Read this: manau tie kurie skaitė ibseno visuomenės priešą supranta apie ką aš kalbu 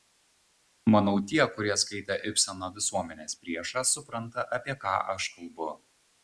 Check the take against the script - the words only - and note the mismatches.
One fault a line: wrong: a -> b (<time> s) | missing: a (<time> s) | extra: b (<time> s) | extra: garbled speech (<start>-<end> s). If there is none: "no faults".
no faults